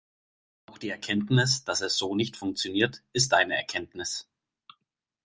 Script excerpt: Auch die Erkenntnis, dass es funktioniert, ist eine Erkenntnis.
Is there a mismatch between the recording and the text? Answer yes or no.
yes